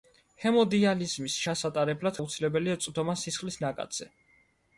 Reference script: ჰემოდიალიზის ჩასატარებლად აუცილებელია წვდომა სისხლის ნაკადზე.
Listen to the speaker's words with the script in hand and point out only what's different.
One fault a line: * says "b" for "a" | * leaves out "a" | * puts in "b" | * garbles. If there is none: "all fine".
all fine